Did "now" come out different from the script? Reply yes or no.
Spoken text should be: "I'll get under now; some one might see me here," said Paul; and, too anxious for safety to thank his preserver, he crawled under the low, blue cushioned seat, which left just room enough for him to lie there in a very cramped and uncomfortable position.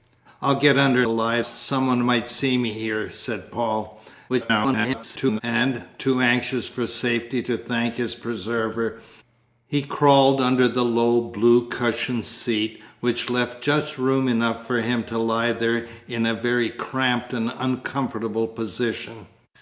yes